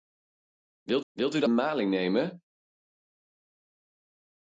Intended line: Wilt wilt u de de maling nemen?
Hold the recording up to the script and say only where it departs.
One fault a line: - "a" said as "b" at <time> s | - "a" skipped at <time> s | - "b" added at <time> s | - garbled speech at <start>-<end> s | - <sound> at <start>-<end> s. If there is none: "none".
none